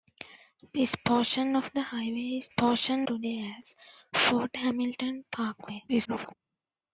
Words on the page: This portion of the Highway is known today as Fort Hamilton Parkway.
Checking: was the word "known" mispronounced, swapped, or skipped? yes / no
yes